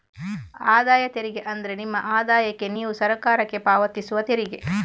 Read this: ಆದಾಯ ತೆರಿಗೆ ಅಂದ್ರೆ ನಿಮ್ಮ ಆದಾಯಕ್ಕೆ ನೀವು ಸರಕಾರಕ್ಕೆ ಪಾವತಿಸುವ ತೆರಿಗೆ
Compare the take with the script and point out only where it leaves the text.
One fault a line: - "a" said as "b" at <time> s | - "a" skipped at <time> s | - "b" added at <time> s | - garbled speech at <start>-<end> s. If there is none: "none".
none